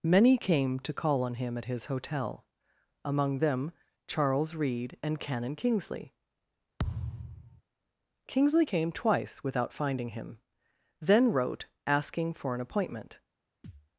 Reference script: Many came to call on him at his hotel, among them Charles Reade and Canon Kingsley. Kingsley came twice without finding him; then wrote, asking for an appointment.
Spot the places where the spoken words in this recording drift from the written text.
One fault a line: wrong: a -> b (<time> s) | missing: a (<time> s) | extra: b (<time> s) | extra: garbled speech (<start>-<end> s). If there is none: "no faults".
no faults